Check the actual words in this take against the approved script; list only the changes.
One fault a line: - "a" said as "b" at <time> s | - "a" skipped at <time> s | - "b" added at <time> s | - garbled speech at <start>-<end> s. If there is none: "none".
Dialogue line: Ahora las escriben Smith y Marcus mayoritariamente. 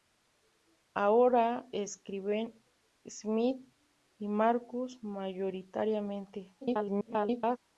- "las" skipped at 1.7 s
- garbled speech at 6.6-7.6 s